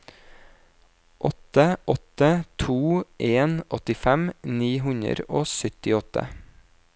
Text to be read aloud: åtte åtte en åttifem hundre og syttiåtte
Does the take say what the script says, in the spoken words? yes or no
no